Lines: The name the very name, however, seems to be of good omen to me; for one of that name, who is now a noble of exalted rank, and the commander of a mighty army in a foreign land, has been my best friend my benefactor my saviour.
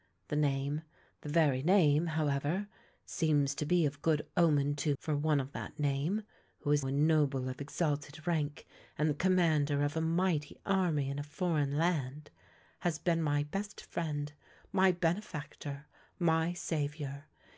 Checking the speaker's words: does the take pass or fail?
fail